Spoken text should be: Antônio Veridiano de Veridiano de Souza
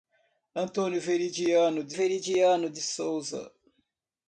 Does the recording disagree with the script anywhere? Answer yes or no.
no